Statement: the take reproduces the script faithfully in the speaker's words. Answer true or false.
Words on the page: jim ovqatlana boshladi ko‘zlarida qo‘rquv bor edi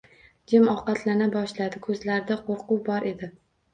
true